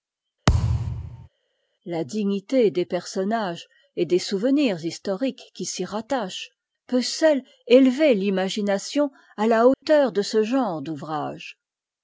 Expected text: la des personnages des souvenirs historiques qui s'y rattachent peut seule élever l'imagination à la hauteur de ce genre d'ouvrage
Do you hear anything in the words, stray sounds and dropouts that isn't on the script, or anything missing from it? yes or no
yes